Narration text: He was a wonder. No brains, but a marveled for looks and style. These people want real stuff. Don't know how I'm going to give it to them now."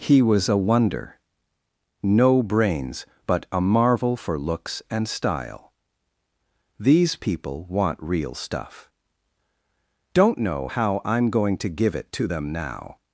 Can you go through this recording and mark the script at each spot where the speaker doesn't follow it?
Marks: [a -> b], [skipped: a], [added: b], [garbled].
He was a wonder. No brains, but a [marveled -> marvel] for looks and style. These people want real stuff. Don't know how I'm going to give it to them now."